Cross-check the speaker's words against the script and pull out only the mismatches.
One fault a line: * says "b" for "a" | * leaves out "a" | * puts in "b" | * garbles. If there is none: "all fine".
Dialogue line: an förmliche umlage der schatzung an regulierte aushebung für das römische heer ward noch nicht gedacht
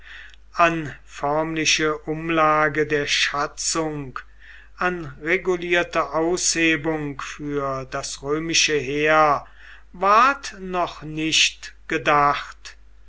all fine